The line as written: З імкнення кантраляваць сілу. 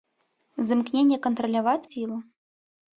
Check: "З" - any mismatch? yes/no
no